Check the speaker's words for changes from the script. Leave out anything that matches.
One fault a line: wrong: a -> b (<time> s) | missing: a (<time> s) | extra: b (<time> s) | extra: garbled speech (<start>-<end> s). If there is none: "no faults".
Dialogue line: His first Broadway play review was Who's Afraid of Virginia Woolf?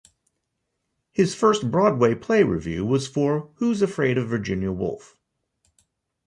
extra: for (3.1 s)